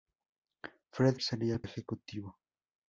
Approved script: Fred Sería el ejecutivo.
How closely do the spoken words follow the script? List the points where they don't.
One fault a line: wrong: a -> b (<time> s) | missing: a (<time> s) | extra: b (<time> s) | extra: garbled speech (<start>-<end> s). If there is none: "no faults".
no faults